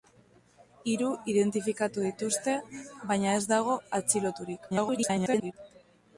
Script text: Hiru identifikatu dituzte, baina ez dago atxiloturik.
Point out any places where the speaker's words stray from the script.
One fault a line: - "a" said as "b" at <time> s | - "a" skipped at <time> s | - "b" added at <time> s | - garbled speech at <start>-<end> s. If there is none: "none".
- garbled speech at 4.7-5.5 s